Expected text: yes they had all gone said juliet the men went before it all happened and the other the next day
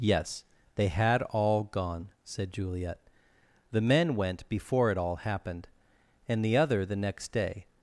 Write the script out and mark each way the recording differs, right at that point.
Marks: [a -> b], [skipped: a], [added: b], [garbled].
yes they had all gone said juliet the men went before it all happened and the other the next day